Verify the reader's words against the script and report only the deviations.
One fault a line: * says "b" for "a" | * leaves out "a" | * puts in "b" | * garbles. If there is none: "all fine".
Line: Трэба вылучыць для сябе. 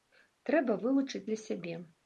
all fine